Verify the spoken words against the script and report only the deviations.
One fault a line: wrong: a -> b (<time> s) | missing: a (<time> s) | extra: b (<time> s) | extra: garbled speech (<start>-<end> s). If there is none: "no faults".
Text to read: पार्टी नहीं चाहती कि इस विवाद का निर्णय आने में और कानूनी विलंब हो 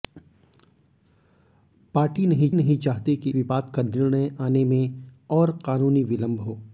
extra: नहीं (2.5 s)
missing: इस (3.3 s)